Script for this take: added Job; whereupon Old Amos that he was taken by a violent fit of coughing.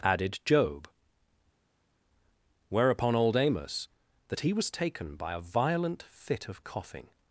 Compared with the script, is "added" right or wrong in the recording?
right